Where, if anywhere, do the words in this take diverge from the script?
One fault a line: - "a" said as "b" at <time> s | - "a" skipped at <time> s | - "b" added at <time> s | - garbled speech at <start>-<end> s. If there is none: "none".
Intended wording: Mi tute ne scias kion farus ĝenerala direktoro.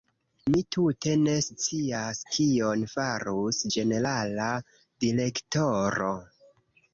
none